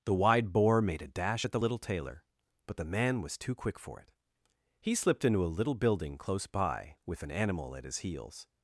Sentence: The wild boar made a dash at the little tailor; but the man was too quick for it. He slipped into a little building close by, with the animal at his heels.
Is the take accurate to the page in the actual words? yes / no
no